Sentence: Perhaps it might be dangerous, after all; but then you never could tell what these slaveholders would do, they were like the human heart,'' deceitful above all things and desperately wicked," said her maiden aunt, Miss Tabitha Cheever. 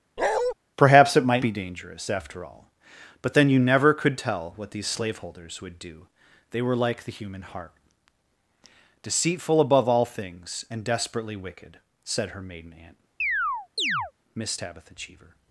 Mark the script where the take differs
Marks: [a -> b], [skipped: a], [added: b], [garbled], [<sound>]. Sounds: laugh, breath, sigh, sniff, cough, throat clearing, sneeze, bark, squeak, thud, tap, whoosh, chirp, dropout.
[bark] Perhaps it might be dangerous, after all; but then you never could tell what these slaveholders would do, they were like the human heart,'' deceitful above all things and desperately wicked," said her maiden aunt, [chirp] Miss Tabitha Cheever.